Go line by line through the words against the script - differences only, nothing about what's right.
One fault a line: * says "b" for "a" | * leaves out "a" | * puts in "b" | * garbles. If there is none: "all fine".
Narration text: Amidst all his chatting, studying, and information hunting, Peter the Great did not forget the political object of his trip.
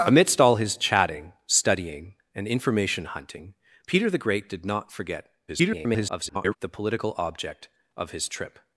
* garbles